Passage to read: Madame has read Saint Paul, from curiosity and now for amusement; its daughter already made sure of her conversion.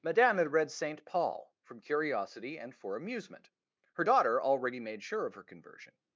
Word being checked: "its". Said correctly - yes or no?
no